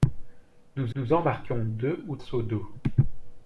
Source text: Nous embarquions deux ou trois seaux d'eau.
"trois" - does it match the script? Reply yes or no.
no